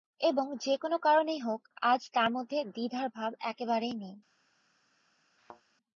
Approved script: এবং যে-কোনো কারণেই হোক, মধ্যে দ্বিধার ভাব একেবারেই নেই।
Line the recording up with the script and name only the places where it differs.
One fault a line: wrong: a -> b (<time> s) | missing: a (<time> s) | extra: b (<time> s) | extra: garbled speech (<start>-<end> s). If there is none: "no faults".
extra: আজ তার (1.8 s)